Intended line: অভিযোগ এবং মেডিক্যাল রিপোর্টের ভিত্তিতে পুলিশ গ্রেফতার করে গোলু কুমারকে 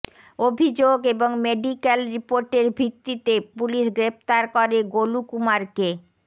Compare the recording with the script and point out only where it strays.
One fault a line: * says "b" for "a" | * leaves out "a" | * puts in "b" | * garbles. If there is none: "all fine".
all fine